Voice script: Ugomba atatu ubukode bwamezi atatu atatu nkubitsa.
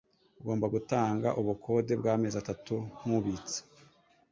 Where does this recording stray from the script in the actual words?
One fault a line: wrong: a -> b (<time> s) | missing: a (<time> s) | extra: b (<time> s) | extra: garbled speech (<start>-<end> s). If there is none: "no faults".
wrong: atatu -> gutanga (0.7 s)
missing: atatu (2.8 s)